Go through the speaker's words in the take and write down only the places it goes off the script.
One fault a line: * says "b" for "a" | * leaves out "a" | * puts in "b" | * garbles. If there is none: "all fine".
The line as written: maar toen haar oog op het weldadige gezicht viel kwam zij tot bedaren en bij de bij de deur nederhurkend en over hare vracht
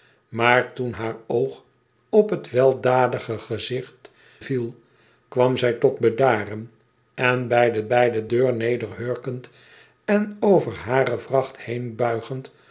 all fine